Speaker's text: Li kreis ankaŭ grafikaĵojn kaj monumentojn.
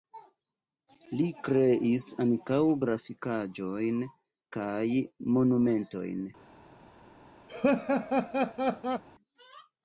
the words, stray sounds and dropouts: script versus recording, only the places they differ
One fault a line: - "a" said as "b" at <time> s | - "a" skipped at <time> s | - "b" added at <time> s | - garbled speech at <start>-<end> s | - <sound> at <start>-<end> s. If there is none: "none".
- laugh at 7.5-9.0 s